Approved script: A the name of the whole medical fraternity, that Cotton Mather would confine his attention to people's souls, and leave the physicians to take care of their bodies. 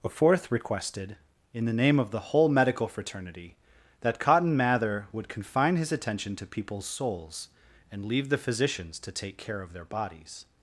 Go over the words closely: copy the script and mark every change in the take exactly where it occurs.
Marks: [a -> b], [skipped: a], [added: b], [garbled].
A [added: fourth requested in] the name of the whole medical fraternity, that Cotton Mather would confine his attention to people's souls, and leave the physicians to take care of their bodies.